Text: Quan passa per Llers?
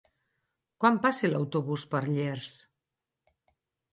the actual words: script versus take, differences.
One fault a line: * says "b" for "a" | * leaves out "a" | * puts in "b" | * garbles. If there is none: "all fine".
* puts in "l'autobús"